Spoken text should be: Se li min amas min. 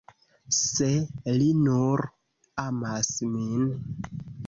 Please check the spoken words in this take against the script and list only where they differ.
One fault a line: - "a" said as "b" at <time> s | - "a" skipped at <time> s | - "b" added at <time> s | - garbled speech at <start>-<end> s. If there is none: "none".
- "min" said as "nur" at 1.7 s